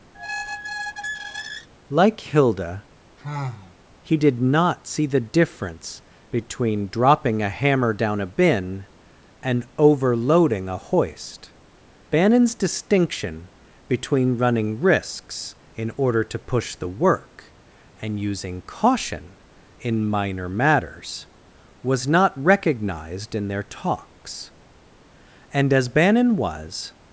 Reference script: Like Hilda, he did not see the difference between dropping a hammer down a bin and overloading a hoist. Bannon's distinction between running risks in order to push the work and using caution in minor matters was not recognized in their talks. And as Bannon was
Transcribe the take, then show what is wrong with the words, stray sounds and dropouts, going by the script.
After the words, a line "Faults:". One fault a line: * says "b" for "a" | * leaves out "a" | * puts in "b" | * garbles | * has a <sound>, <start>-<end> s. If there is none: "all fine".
Like Hilda, he did not see the difference between dropping a hammer down a bin and overloading a hoist. Bannon's distinction between running risks in order to push the work and using caution in minor matters was not recognized in their talks. And as Bannon was
Faults:
* has a squeak, 0.1-1.7 s
* has a sigh, 3.2-3.8 s